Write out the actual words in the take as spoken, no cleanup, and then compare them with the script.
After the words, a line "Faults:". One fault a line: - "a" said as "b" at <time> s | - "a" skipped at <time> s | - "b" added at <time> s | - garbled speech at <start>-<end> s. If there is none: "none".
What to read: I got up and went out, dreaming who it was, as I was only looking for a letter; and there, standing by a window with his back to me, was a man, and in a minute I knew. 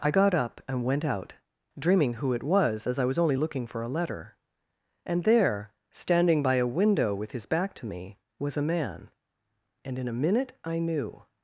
I got up and went out, dreaming who it was, as I was only looking for a letter; and there, standing by a window with his back to me, was a man, and in a minute I knew.
Faults:
none